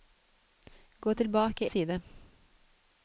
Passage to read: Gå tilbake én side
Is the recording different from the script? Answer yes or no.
yes